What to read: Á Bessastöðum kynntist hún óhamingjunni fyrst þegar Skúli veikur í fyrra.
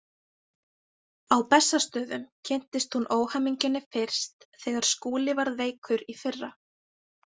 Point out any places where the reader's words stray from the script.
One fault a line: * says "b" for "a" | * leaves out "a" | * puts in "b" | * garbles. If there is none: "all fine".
* puts in "varð"